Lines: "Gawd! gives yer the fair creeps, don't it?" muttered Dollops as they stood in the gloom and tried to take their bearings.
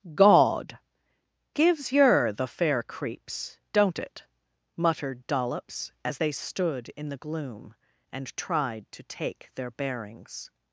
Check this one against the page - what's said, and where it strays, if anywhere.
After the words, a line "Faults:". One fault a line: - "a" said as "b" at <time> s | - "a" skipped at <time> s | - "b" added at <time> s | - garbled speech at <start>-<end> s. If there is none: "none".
"Gawd! gives yer the fair creeps, don't it?" muttered Dollops as they stood in the gloom and tried to take their bearings.
Faults:
none